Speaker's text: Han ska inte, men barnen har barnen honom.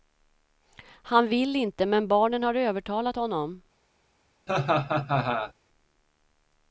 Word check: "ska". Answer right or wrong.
wrong